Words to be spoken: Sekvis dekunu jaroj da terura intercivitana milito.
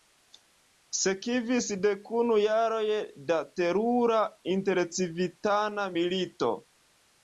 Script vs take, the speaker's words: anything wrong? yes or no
no